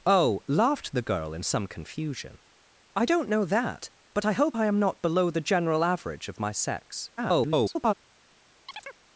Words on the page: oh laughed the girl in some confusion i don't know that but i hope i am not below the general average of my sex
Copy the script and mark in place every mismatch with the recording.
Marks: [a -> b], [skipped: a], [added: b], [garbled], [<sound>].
oh laughed the girl in some confusion i don't know that but i hope i am not below the general average of my sex [garbled] [chirp]